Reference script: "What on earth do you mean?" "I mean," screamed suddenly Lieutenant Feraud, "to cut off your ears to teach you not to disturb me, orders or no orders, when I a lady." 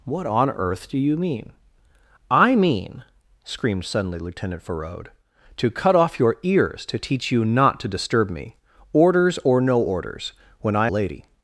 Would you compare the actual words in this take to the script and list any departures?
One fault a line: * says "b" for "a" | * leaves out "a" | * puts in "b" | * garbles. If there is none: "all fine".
all fine